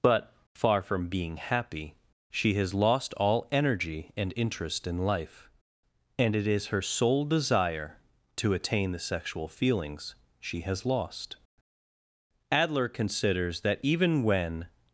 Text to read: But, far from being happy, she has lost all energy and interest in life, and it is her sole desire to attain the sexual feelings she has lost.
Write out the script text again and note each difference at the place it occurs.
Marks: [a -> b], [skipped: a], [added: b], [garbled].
But, far from being happy, she has lost all energy and interest in life, and it is her sole desire to attain the sexual feelings she has lost. [added: Adler considers that even when]